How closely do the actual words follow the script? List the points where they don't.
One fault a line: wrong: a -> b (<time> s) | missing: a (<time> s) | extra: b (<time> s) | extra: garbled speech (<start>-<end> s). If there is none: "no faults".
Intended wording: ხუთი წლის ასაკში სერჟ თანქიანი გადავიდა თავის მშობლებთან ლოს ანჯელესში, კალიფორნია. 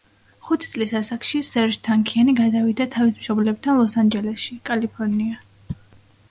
no faults